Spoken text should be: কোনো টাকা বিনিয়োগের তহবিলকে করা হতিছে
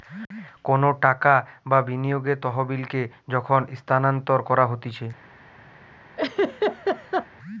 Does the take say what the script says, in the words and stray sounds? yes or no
no